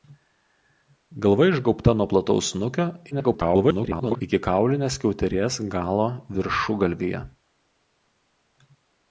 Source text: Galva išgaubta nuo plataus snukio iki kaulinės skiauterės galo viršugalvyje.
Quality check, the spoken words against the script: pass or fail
fail